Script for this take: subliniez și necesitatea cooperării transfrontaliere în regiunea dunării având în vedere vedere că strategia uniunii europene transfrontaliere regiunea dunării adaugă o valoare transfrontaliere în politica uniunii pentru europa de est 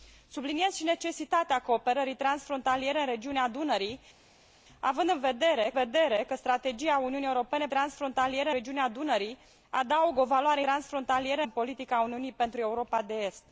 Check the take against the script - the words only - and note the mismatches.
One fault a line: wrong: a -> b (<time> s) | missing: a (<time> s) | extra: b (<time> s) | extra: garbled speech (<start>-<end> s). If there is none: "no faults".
no faults